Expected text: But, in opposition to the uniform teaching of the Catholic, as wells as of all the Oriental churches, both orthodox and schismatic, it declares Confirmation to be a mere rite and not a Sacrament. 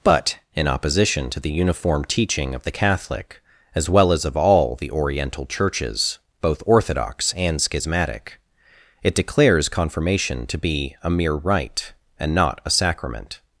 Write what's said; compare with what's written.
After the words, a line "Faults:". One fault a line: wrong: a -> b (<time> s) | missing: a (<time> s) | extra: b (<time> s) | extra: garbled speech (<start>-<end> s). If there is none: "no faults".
But, in opposition to the uniform teaching of the Catholic, as well as of all the Oriental churches, both orthodox and schismatic, it declares Confirmation to be a mere rite and not a Sacrament.
Faults:
wrong: wells -> well (3.9 s)